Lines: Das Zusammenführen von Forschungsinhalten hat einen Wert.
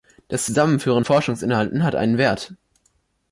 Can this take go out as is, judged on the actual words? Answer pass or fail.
fail